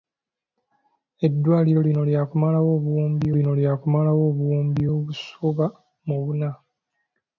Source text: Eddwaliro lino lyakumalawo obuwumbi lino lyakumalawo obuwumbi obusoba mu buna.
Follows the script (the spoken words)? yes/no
yes